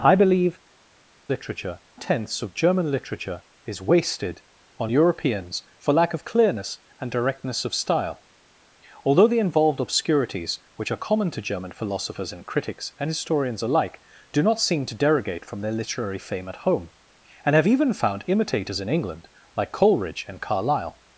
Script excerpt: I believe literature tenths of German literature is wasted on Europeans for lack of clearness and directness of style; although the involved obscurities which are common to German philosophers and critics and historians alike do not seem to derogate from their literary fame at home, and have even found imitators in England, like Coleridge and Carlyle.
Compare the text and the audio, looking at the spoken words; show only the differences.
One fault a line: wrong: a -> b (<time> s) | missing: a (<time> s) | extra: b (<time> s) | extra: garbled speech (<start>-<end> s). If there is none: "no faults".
no faults